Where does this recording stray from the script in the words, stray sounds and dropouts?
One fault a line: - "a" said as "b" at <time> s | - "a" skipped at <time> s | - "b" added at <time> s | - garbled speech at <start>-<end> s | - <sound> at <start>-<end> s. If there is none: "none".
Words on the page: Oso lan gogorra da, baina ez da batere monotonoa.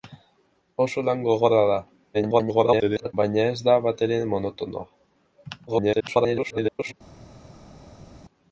- garbled speech at 2.1-3.1 s
- garbled speech at 5.7-6.9 s